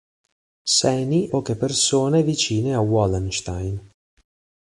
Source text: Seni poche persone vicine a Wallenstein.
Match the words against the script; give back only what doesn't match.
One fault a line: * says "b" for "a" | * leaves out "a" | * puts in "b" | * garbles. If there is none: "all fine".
all fine